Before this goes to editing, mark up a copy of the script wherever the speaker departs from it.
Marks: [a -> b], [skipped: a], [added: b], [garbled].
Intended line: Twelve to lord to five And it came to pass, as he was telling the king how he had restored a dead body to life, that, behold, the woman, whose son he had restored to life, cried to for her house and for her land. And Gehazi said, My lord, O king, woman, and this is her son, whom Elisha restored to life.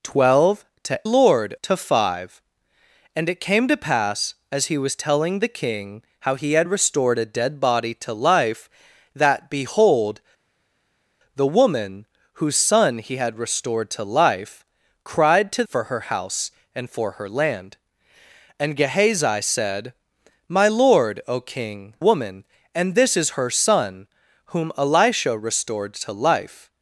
Twelve to lord to five And it came to pass, as he was telling the king how he had restored a dead body to life, that, behold, the woman, whose son he had restored to life, cried to for her house and for her land. And Gehazi said, My lord, O king, woman, and this is her son, whom Elisha restored to life.